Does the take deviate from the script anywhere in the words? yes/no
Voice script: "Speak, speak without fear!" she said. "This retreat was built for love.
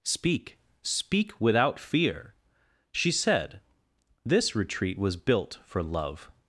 no